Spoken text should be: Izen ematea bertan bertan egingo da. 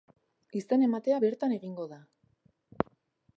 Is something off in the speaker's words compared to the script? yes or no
yes